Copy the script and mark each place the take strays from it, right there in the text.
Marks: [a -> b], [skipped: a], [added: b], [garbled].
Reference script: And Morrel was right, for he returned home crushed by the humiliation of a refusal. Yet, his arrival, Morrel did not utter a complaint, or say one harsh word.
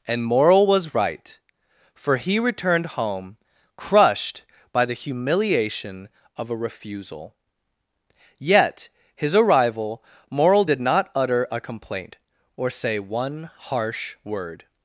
And Morrel was right, for he returned home crushed by the humiliation of a refusal. Yet, his arrival, Morrel did not utter a complaint, or say one harsh word.